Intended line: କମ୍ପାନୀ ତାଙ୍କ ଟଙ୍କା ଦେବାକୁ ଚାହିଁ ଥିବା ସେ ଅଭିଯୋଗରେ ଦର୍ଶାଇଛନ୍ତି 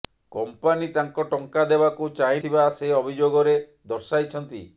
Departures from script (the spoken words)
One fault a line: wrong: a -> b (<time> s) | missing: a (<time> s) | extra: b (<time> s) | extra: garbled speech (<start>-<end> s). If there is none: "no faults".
no faults